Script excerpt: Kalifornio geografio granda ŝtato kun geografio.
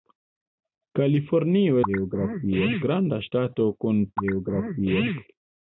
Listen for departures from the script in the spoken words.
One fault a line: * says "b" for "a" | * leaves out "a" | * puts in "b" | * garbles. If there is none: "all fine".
all fine